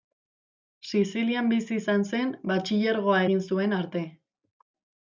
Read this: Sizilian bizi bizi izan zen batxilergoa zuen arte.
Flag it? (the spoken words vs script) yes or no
yes